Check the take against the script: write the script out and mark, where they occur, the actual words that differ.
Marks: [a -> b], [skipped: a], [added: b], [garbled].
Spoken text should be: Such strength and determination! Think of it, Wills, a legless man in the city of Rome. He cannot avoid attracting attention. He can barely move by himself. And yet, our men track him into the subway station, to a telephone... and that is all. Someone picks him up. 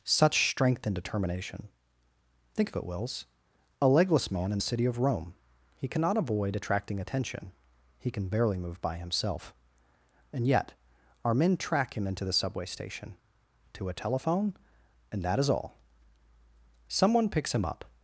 Such strength and determination! Think of it, Wills, a legless man in the city of Rome. He cannot avoid attracting attention. He can barely move by himself. And yet, our men track him into the subway station, to a telephone... and that is all. Someone picks him up.